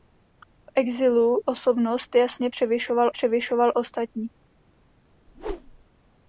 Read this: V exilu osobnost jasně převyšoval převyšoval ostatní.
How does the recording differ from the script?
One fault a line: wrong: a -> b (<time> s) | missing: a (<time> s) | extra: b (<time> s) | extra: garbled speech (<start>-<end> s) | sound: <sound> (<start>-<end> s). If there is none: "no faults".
sound: whoosh (5.3-5.8 s)